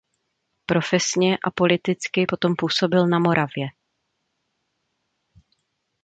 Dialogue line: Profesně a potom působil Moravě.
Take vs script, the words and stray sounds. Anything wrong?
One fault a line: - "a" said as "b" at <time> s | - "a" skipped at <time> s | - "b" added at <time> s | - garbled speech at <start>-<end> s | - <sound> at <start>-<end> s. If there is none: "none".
- "politicky" added at 1.5 s
- "na" added at 3.1 s